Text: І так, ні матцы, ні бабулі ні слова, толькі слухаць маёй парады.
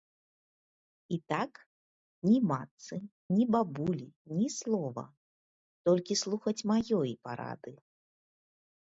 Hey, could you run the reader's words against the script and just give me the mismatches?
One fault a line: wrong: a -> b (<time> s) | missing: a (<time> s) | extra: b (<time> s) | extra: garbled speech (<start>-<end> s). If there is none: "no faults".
no faults